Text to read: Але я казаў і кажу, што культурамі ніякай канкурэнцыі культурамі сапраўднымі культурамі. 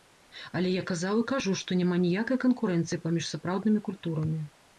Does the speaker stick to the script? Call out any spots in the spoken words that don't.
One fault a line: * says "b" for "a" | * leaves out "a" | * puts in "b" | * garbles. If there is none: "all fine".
* says "няма" for "культурамі"
* says "паміж" for "культурамі"